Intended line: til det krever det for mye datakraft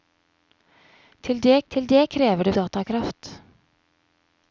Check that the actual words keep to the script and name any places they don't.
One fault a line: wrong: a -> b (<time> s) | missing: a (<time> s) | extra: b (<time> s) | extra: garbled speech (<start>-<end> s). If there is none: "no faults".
wrong: krever -> til (1.7 s)
wrong: for mye -> krever det (2.1 s)